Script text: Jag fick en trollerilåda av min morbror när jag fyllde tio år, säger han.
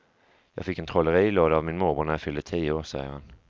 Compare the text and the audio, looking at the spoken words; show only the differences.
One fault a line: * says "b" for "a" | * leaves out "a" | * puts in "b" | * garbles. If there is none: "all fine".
all fine